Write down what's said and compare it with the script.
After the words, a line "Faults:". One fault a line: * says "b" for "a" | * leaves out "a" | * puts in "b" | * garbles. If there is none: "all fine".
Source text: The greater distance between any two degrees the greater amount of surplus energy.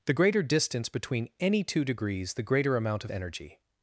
The greater distance between any two degrees the greater amount of energy.
Faults:
* leaves out "surplus"